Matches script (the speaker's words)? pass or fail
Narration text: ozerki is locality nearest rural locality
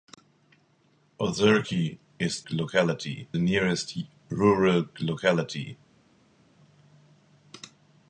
pass